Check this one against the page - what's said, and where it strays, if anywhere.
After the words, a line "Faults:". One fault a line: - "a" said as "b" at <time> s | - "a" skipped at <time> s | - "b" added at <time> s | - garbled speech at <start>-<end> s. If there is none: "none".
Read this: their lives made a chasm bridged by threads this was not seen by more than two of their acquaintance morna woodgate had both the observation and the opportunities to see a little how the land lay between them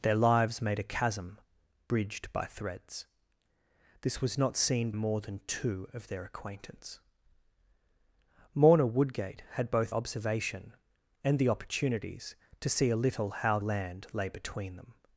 their lives made a chasm bridged by threads this was not seen more than two of their acquaintance morna woodgate had both observation and the opportunities to see a little how land lay between them
Faults:
- "by" skipped at 4.9 s
- "the" skipped at 9.9 s
- "the" skipped at 13.6 s